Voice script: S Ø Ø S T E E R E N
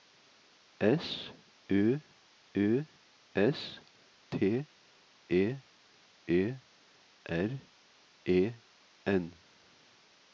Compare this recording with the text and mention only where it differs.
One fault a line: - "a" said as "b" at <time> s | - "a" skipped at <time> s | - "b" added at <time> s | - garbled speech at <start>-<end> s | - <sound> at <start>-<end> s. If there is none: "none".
none